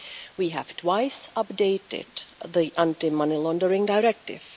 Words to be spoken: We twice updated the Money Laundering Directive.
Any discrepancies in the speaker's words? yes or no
yes